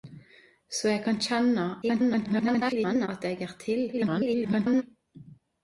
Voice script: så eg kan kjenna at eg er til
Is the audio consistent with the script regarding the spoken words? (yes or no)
no